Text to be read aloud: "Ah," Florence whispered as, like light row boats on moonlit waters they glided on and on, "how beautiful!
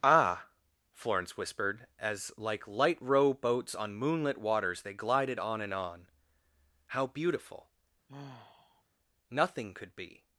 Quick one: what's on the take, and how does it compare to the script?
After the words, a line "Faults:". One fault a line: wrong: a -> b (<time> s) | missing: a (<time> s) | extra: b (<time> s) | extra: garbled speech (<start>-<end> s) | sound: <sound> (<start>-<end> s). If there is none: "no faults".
"Ah," Florence whispered as, like light row boats on moonlit waters they glided on and on, "how beautiful! Nothing could be
Faults:
sound: sigh (8.1-8.8 s)
extra: Nothing could be (9.3 s)